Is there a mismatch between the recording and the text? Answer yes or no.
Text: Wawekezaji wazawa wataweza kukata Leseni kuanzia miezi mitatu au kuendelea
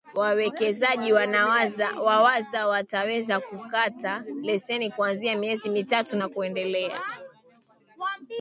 yes